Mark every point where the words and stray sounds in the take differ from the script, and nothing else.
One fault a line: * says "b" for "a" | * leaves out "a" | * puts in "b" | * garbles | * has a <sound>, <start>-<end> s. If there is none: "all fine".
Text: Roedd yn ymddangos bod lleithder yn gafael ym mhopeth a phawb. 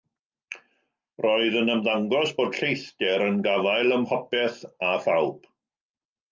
all fine